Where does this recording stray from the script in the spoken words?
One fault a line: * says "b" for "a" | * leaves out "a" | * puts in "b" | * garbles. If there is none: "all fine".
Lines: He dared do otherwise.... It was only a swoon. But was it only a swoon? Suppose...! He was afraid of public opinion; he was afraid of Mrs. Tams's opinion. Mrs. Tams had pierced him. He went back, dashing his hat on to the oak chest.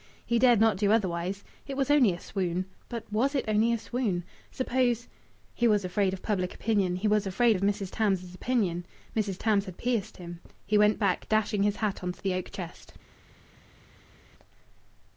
* puts in "not"